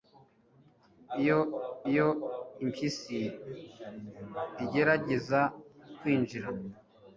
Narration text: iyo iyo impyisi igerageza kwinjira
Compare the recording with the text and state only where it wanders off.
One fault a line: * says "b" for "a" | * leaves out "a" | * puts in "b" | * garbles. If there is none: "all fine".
all fine